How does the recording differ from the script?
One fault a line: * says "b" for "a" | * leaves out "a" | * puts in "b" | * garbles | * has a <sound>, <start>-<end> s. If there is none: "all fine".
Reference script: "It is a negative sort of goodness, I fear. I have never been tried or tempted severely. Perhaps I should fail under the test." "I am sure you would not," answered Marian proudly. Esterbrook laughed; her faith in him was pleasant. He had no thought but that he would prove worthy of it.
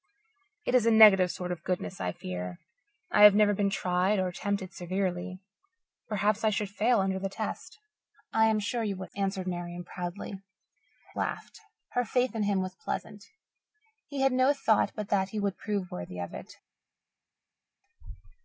* leaves out "not"
* leaves out "Esterbrook"